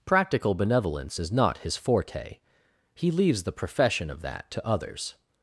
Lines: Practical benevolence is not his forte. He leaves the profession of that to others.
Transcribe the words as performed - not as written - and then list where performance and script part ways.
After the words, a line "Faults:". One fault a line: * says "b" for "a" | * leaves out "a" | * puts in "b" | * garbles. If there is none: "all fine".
Practical benevolence is not his forte. He leaves the profession of that to others.
Faults:
all fine